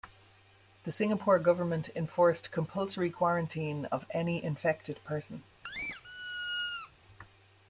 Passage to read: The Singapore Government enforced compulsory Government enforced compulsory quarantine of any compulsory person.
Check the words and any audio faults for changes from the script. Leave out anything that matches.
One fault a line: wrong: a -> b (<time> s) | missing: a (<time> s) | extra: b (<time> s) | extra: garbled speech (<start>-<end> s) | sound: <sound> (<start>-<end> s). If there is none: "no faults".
missing: Government enforced compulsory (3.1 s)
wrong: compulsory -> infected (4.4 s)
sound: squeak (5.6-6.9 s)